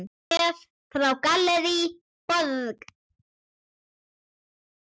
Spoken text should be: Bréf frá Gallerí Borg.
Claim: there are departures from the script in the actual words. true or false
false